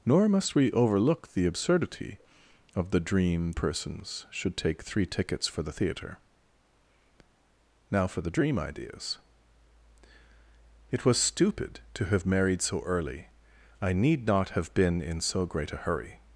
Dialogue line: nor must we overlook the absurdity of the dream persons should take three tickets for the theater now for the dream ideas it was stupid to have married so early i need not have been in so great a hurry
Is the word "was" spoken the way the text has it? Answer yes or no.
yes